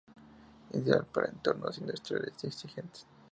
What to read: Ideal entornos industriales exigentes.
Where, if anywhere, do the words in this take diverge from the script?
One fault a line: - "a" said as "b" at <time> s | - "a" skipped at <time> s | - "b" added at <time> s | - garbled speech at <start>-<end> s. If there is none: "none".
- "para" added at 1.1 s